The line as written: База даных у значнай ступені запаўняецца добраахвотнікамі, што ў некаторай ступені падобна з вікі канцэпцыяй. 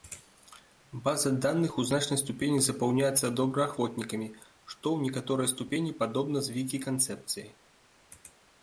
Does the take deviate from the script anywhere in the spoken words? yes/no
no